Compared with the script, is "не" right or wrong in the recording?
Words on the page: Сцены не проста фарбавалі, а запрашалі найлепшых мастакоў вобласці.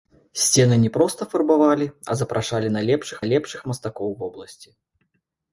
right